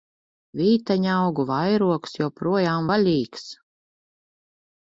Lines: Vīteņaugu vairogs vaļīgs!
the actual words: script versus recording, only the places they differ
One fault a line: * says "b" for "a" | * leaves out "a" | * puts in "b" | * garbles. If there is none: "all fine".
* puts in "joprojām"